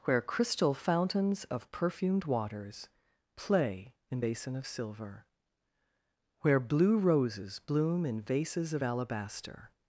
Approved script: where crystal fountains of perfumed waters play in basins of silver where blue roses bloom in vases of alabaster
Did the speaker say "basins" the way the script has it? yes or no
no